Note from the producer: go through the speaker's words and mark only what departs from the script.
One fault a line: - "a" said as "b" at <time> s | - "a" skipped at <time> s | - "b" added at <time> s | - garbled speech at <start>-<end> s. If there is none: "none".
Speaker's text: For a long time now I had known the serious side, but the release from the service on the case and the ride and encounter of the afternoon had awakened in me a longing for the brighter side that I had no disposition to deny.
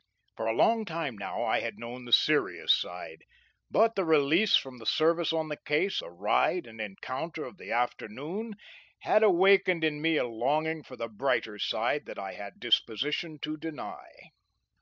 - "and" skipped at 6.0 s
- "no" skipped at 12.5 s